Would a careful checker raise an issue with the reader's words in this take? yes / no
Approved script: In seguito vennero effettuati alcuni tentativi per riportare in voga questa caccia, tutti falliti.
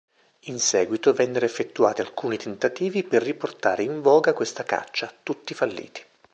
no